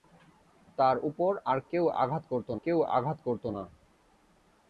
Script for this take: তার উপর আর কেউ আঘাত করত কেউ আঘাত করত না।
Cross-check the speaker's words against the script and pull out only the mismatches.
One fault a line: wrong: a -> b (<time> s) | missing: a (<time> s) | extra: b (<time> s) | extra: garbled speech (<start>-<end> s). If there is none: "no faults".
no faults